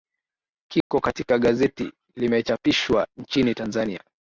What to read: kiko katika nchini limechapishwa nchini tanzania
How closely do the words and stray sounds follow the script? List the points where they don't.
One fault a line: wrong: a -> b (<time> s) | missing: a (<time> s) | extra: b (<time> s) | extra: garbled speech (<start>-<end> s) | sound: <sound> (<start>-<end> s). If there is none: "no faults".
sound: dropout (0.8-0.9 s)
wrong: nchini -> gazeti (1.4 s)